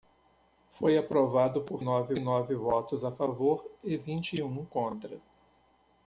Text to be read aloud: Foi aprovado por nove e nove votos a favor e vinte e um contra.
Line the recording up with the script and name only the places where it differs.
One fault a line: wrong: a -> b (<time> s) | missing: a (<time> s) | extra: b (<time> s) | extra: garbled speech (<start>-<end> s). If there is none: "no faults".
no faults